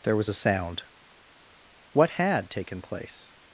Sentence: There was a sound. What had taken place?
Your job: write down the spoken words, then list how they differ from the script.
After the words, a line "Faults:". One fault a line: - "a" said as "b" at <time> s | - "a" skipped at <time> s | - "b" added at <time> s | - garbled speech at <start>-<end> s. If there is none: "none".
There was a sound. What had taken place?
Faults:
none